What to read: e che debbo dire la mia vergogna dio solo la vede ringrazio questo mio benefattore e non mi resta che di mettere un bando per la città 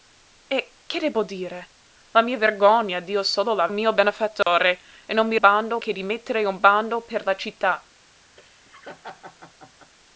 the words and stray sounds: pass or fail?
fail